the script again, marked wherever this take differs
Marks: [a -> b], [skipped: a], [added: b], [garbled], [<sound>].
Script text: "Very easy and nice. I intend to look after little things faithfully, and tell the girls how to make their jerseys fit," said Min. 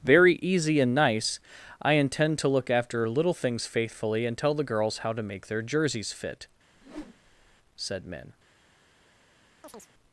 "Very easy and nice. I intend to look after little things faithfully, and tell the girls how to make their jerseys fit," [whoosh] said Min. [chirp]